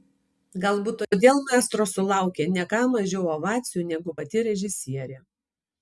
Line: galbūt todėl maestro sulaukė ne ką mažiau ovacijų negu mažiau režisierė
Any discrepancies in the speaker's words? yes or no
yes